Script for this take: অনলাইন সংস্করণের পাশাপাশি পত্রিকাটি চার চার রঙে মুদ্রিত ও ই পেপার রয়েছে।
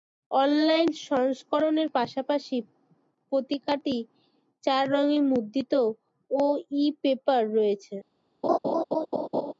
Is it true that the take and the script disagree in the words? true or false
true